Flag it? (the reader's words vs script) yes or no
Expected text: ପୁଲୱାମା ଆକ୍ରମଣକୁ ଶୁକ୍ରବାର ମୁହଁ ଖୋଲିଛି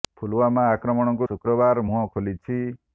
no